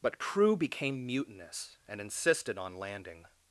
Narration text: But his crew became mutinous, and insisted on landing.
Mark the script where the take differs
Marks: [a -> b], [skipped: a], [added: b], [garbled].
But [skipped: his] crew became mutinous, and insisted on landing.